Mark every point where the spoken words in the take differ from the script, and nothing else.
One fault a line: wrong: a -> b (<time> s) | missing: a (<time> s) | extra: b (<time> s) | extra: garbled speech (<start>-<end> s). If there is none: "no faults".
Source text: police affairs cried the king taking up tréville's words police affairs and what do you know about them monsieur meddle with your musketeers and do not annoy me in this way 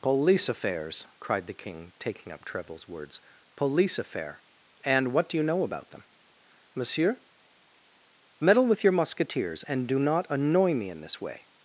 wrong: affairs -> affair (4.0 s)